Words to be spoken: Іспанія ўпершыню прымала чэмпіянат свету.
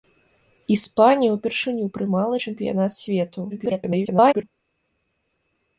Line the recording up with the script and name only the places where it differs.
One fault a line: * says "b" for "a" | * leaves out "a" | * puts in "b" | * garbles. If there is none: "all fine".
* garbles